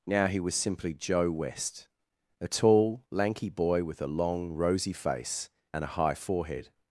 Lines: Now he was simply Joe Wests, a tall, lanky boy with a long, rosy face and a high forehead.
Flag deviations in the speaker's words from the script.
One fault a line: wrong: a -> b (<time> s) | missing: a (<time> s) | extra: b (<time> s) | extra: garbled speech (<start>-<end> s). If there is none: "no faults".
wrong: Wests -> West (1.3 s)